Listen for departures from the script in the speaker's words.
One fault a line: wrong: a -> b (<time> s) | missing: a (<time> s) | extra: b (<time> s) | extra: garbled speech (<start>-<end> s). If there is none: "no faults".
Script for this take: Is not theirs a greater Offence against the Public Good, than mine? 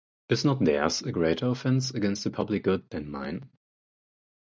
no faults